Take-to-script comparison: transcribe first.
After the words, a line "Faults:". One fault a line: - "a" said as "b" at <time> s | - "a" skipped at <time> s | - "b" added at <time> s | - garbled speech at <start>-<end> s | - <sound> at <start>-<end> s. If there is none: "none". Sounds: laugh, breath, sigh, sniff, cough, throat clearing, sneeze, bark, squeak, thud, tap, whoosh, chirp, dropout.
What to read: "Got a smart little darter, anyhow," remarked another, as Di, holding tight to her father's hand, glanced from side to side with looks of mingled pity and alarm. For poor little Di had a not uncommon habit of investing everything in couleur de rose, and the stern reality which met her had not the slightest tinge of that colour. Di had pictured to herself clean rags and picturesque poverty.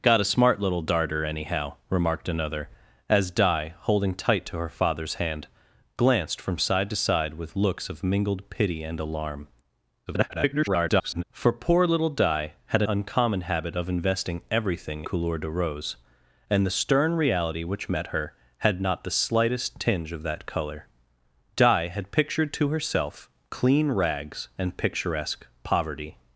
"Got a smart little darter, anyhow," remarked another, as Di, holding tight to her father's hand, glanced from side to side with looks of mingled pity and alarm. [garbled] For poor little Di had a uncommon habit of investing everything couleur de rose, and the stern reality which met her had not the slightest tinge of that colour. Di had pictured to herself clean rags and picturesque poverty.
Faults:
- garbled speech at 10.1-11.2 s
- "not" skipped at 12.9 s
- "in" skipped at 15.1 s